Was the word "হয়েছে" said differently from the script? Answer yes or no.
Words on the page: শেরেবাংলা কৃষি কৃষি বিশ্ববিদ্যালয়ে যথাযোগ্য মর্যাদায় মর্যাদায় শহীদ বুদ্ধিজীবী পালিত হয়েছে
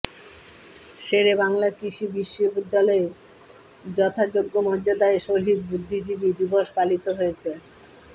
no